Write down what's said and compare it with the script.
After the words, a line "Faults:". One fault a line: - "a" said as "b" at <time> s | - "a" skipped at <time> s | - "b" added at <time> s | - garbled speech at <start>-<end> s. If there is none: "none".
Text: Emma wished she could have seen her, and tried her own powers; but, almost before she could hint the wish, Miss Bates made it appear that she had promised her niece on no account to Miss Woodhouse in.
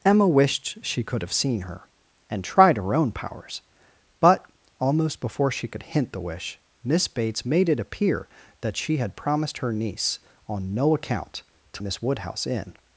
Emma wished she could have seen her, and tried her own powers; but, almost before she could hint the wish, Miss Bates made it appear that she had promised her niece on no account to Miss Woodhouse in.
Faults:
none